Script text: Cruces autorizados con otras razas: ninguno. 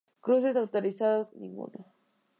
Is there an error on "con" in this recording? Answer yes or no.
yes